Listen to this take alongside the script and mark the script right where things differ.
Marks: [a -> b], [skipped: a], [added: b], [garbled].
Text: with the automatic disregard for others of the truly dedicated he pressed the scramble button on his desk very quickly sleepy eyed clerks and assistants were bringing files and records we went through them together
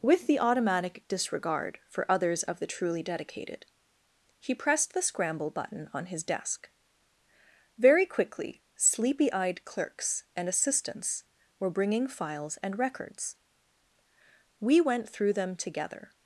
with the automatic disregard for others of the truly dedicated he pressed the scramble button on his desk very quickly sleepy eyed clerks and assistants were bringing files and records we went through them together